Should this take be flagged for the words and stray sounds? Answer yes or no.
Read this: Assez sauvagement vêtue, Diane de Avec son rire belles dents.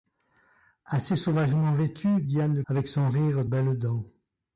no